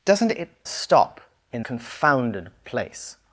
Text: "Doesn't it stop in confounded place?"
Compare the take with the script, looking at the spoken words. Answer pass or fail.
pass